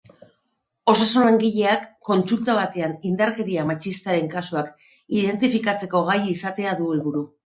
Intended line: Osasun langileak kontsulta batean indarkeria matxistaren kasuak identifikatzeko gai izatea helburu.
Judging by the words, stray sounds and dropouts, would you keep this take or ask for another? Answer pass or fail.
fail